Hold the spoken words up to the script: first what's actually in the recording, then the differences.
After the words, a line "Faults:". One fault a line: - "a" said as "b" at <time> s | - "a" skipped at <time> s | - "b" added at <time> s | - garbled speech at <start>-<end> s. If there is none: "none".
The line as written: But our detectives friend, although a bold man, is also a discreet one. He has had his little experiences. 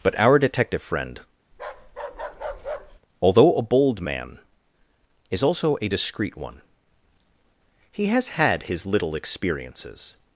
But our detective friend, although a bold man, is also a discreet one. He has had his little experiences.
Faults:
- "detectives" said as "detective" at 0.4 s